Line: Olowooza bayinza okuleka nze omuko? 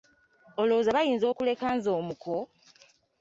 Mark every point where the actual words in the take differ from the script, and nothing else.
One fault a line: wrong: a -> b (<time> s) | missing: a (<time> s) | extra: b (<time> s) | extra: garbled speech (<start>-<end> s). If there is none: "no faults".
no faults